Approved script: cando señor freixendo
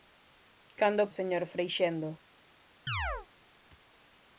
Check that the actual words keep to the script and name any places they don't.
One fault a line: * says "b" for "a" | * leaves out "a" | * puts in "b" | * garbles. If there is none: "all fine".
all fine